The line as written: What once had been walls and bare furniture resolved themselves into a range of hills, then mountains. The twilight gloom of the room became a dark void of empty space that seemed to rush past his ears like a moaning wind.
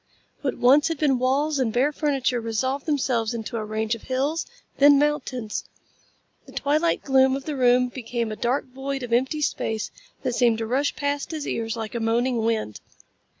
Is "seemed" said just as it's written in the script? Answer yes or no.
yes